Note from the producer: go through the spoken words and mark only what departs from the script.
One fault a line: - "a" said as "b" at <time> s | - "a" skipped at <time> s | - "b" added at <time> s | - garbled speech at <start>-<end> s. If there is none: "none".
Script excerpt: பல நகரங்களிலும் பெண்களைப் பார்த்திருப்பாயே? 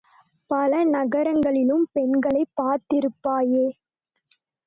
none